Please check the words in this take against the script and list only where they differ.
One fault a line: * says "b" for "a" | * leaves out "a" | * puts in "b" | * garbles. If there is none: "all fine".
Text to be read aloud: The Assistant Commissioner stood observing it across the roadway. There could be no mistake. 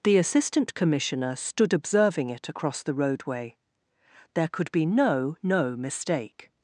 * puts in "no"